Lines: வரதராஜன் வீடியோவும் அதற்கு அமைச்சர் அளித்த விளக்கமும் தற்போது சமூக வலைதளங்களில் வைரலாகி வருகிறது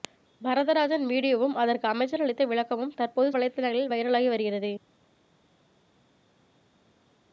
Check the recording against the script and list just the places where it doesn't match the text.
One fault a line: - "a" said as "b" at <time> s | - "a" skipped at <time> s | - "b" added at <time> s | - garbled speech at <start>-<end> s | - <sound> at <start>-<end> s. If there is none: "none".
- "சமூக" skipped at 3.3 s